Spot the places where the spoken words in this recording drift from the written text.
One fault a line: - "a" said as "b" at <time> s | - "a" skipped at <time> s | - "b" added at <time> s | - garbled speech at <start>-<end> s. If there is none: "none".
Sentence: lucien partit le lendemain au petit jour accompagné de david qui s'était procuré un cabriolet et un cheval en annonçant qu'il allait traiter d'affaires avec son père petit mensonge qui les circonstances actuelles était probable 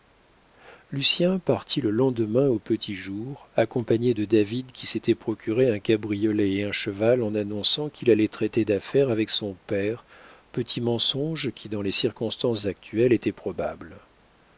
- "dans" added at 11.7 s